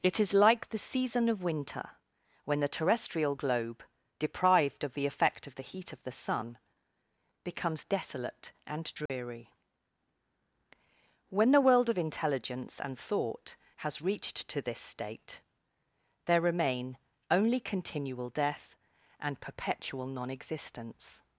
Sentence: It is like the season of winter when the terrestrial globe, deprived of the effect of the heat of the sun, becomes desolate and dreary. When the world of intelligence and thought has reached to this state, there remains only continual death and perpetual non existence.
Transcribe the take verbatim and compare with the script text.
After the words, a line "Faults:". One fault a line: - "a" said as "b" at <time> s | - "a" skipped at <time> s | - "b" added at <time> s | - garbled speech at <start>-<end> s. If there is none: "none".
It is like the season of winter when the terrestrial globe, deprived of the effect of the heat of the sun, becomes desolate and dreary. When the world of intelligence and thought has reached to this state, there remain only continual death and perpetual non existence.
Faults:
- "remains" said as "remain" at 16.4 s